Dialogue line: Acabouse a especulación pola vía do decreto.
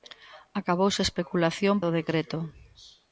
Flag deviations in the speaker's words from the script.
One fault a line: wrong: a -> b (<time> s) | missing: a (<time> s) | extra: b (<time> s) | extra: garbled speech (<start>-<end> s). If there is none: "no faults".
missing: pola vía (1.8 s)